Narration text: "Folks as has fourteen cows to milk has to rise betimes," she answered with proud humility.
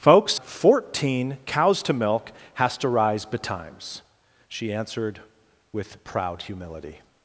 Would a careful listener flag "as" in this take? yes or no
yes